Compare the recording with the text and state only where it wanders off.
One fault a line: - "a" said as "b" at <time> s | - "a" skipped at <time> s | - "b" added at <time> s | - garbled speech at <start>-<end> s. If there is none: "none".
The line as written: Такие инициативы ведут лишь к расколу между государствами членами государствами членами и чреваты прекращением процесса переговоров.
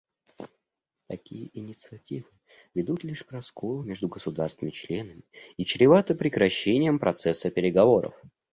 - "государствами членами" skipped at 5.2 s